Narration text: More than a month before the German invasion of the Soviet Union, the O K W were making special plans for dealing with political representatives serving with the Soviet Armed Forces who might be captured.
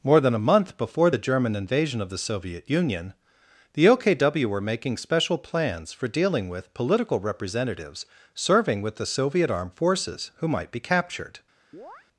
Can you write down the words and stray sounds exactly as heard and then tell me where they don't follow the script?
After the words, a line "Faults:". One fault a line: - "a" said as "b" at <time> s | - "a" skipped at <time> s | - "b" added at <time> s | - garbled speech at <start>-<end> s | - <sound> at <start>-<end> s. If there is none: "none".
More than a month before the German invasion of the Soviet Union, the O K W were making special plans for dealing with political representatives serving with the Soviet Armed Forces who might be captured.
Faults:
- chirp at 11.7-12.1 s